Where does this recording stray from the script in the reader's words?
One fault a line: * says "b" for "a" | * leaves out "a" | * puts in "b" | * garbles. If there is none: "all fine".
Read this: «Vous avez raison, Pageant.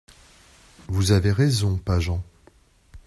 all fine